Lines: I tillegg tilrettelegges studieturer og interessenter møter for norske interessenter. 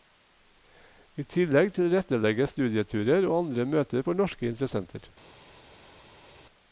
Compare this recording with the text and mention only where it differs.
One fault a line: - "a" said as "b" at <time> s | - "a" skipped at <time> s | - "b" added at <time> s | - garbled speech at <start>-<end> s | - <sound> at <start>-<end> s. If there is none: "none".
- "interessenter" said as "andre" at 3.4 s